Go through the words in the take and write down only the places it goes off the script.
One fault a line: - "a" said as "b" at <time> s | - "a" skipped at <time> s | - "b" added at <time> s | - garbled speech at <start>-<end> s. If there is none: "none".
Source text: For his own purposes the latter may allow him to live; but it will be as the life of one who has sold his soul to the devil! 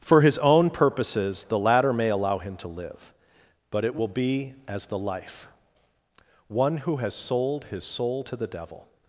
- "of" skipped at 5.5 s